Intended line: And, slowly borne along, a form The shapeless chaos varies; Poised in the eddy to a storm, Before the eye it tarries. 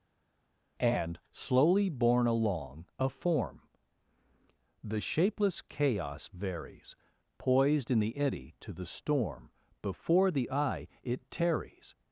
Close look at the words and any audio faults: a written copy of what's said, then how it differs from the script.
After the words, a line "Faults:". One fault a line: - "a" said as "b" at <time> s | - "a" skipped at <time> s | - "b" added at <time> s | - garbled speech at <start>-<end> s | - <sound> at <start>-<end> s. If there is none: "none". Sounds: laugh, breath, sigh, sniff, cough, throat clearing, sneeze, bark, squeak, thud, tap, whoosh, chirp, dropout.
And, slowly borne along, a form The shapeless chaos varies; Poised in the eddy to the storm, Before the eye it tarries.
Faults:
- "a" said as "the" at 8.7 s